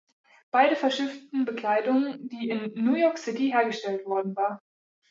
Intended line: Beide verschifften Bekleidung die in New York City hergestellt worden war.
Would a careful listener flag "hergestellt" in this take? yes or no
no